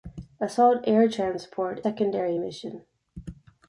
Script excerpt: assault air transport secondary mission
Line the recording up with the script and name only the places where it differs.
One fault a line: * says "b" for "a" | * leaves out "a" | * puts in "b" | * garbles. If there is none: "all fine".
all fine